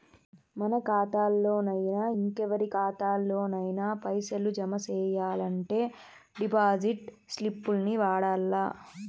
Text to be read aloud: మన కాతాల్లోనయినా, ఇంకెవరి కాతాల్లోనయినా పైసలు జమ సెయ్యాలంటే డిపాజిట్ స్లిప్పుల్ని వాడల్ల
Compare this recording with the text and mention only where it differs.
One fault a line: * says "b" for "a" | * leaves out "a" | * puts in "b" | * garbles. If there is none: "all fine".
all fine